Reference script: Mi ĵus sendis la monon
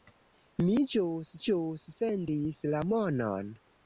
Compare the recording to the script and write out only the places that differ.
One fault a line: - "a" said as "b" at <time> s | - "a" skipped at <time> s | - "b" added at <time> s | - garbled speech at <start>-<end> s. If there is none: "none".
- "ĵus" added at 1.5 s